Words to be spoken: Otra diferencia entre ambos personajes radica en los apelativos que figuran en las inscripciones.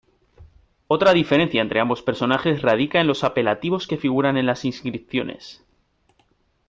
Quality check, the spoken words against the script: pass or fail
pass